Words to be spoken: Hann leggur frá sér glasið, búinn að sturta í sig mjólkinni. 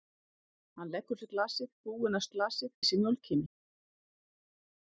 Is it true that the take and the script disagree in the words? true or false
true